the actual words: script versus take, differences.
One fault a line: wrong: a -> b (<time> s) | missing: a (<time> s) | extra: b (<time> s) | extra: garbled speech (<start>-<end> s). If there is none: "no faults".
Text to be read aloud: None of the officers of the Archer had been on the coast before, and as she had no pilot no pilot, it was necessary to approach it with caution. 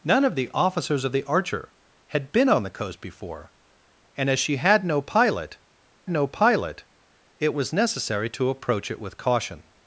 no faults